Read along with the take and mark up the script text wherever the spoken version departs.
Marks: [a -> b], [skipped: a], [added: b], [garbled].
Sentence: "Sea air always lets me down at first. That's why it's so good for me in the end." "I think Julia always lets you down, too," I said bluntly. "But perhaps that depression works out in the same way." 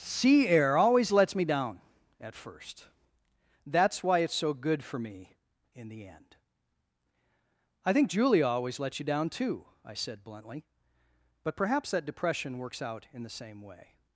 "Sea air always lets me down at first. That's why it's so good for me in the end." "I think Julia always lets you down, too," I said bluntly. "But perhaps that depression works out in the same way."